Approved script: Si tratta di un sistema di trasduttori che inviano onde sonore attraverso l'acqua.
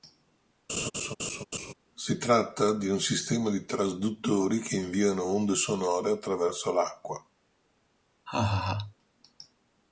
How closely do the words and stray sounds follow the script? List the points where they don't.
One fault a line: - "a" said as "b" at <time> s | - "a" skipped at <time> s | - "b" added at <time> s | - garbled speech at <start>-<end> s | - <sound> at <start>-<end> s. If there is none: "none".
- laugh at 0.7-1.7 s
- laugh at 8.3-8.9 s